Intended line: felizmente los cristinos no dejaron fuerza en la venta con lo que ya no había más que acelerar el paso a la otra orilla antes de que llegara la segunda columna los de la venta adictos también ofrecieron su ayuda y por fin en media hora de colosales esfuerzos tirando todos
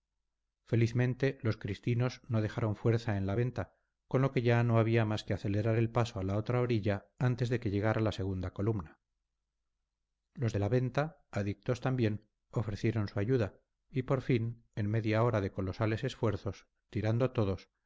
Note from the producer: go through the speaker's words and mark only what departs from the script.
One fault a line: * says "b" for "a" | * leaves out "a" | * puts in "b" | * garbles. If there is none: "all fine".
all fine